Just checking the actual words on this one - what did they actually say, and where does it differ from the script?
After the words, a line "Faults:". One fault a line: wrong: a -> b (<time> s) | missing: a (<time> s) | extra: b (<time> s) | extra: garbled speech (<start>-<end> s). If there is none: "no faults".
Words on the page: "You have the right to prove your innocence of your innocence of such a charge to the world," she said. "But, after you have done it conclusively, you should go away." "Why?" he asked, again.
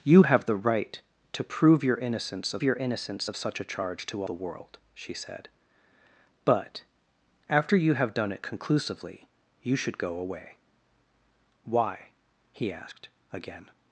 "You have the right to prove your innocence of your innocence of such a charge to the world," she said. "But, after you have done it conclusively, you should go away." "Why?" he asked, again.
Faults:
no faults